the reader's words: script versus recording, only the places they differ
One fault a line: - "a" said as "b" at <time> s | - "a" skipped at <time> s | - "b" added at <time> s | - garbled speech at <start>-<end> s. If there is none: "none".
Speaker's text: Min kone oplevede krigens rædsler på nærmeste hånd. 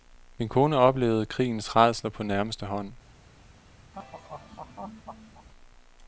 none